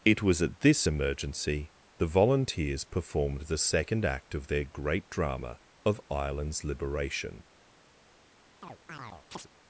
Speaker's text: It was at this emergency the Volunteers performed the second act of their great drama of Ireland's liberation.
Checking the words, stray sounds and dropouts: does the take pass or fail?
fail